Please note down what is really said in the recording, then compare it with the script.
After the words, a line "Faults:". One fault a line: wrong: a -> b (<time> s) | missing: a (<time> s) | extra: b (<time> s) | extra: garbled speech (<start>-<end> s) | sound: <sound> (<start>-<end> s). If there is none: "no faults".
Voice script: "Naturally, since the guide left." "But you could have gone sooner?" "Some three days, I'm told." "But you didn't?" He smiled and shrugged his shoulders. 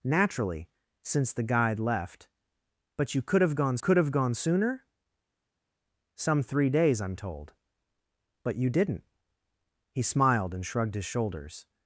"Naturally, since the guide left." "But you could have gone could have gone sooner?" "Some three days, I'm told." "But you didn't?" He smiled and shrugged his shoulders.
Faults:
extra: could have gone (3.8 s)